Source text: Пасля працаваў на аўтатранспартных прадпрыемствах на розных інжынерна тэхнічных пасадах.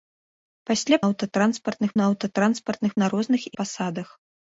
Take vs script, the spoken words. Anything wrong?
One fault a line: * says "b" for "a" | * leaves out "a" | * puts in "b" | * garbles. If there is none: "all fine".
* says "аўтатранспартных" for "працаваў"
* leaves out "прадпрыемствах"
* leaves out "інжынерна тэхнічных"